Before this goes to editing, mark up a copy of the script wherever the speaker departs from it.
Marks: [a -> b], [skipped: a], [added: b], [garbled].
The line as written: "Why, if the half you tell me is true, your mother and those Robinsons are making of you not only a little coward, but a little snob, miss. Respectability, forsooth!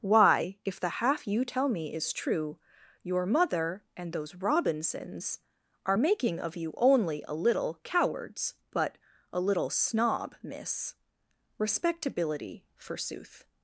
"Why, if the half you tell me is true, your mother and those Robinsons are making of you [skipped: not] only a little [coward, -> cowards] but a little snob, miss. Respectability, forsooth!